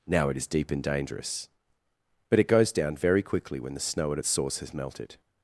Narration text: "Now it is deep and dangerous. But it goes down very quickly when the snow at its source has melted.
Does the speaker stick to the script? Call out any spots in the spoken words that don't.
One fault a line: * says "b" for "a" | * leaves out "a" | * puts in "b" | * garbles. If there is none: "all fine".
all fine